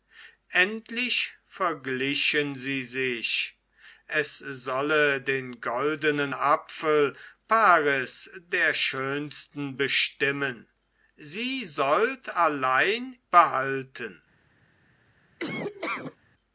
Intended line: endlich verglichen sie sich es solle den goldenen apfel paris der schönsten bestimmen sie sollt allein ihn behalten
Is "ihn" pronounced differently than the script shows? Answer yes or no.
yes